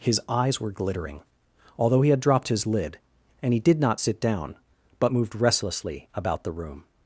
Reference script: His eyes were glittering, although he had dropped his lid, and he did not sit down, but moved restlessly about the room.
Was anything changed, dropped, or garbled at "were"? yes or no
no